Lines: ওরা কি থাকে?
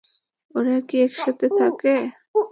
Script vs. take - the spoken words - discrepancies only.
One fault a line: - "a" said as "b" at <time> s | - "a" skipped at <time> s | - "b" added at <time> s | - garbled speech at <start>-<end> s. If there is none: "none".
- "একসাথে" added at 1.1 s